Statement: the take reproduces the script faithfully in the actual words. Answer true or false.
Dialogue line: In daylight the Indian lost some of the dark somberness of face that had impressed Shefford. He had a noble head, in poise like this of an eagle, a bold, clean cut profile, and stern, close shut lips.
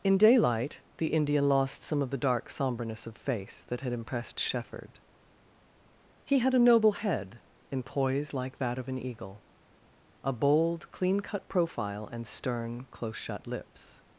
false